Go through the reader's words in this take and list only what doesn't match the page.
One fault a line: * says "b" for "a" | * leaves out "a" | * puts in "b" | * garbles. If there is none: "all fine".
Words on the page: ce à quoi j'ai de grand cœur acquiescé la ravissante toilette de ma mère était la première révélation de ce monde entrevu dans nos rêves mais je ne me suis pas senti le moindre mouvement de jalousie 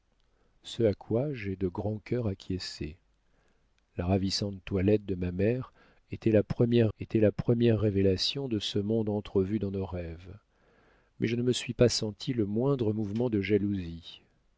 * puts in "était la première"